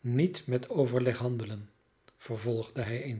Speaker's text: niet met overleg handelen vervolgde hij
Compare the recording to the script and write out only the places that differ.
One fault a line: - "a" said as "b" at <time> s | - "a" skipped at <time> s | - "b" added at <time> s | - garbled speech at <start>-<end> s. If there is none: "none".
none